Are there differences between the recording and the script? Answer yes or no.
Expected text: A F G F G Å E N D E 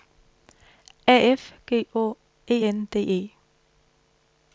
yes